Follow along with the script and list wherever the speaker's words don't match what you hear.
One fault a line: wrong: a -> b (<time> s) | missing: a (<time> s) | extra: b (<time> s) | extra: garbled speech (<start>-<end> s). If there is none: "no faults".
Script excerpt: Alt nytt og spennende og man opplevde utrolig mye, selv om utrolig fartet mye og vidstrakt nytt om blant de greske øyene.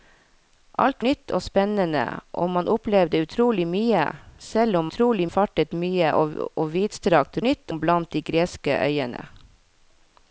no faults